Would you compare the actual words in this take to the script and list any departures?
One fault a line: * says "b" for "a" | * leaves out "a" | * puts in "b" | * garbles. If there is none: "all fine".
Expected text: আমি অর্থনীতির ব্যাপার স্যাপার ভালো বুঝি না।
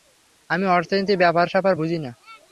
* leaves out "ভালো"